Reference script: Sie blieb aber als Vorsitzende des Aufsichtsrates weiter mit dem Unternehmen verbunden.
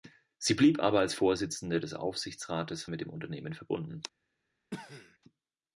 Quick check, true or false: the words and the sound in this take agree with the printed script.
false